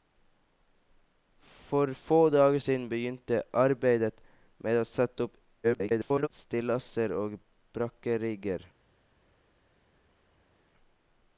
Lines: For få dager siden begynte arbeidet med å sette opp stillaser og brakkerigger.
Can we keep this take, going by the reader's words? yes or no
no